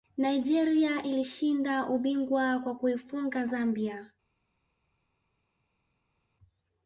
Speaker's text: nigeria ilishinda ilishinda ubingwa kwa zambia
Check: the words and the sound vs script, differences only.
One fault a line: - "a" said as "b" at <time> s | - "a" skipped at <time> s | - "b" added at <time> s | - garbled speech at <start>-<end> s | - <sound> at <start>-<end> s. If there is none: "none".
- "ilishinda" skipped at 1.9 s
- "kuifunga" added at 2.7 s